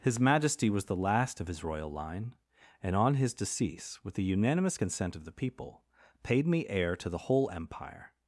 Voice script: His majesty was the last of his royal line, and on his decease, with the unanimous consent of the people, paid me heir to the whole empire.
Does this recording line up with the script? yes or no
yes